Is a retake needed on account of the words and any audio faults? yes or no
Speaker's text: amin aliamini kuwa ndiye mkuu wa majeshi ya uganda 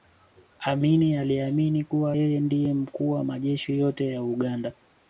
yes